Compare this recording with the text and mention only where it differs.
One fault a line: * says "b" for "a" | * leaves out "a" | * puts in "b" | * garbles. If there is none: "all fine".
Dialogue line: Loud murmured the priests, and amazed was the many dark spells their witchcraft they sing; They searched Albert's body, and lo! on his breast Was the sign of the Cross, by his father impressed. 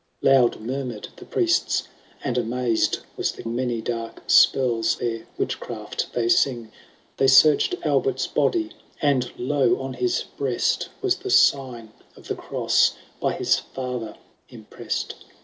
all fine